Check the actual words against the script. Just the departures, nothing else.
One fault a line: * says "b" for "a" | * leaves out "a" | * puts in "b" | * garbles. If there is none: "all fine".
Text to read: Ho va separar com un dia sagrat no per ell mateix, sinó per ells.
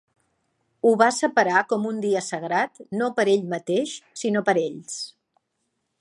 all fine